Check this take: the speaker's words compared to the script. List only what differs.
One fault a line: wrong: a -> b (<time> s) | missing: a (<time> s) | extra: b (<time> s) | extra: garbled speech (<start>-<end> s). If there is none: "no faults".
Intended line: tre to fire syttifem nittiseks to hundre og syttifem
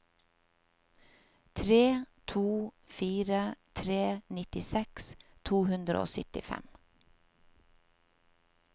wrong: syttifem -> tre (3.8 s)